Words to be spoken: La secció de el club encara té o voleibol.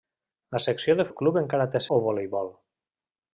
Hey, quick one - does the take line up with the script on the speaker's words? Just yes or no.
yes